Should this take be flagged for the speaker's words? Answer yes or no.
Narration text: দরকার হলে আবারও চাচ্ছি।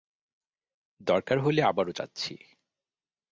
no